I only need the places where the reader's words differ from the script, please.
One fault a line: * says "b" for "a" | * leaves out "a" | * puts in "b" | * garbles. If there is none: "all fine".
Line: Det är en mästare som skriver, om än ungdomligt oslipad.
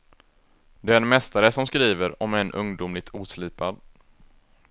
all fine